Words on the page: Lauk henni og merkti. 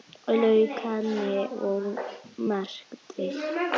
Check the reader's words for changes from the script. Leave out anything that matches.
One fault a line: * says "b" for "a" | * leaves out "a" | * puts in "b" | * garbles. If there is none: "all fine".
all fine